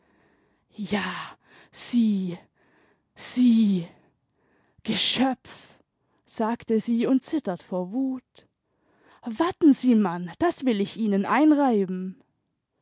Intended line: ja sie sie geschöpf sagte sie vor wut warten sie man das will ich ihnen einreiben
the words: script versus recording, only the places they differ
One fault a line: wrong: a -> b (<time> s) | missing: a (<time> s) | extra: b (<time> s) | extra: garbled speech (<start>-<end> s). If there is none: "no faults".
extra: und zittert (7.0 s)